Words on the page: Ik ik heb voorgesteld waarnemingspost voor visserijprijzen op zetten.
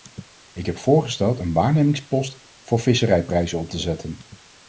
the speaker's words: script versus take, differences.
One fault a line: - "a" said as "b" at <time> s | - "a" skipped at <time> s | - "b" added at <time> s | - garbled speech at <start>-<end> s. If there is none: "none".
- "ik" skipped at 0.7 s
- "een" added at 1.4 s
- "te" added at 3.7 s